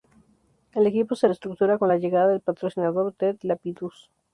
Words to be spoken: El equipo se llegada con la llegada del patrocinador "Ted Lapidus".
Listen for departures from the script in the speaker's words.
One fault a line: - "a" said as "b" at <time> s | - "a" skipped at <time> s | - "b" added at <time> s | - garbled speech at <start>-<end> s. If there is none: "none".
- "llegada" said as "reestructura" at 1.3 s